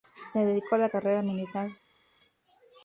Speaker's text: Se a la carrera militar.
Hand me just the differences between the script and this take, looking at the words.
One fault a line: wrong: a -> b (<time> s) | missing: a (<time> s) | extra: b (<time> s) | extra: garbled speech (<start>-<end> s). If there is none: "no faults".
extra: dedicó (0.4 s)